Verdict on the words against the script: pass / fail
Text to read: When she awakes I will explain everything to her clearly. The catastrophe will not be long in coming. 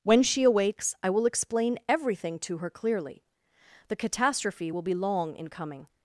fail